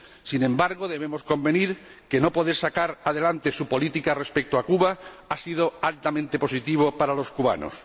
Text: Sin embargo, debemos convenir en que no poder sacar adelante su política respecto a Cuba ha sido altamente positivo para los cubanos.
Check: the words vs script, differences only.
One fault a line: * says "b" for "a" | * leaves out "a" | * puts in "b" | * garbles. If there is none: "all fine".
all fine